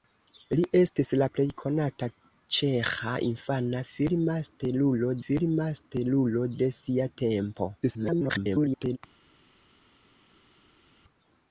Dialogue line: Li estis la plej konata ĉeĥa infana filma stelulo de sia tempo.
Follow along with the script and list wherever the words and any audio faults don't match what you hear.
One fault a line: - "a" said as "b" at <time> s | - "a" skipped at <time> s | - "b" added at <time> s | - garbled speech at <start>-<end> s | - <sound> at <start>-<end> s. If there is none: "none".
- "filma stelulo" added at 5.2 s
- garbled speech at 7.8-9.0 s